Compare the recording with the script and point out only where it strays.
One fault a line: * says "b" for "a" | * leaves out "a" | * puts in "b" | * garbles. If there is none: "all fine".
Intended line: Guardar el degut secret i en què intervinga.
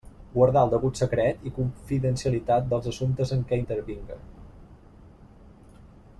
* puts in "confidencialitat dels assumptes"